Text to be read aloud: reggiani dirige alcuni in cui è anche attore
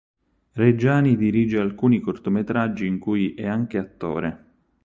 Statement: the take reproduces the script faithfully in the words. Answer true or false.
false